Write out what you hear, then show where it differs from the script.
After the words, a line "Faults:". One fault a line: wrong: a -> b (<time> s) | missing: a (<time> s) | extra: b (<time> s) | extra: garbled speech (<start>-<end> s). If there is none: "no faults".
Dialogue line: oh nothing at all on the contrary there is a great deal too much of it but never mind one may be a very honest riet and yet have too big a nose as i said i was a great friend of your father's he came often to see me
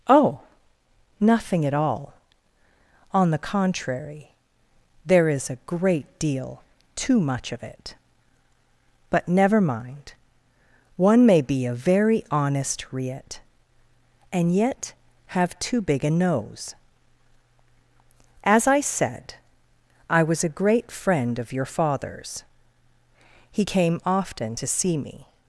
oh nothing at all on the contrary there is a great deal too much of it but never mind one may be a very honest riet and yet have too big a nose as i said i was a great friend of your father's he came often to see me
Faults:
no faults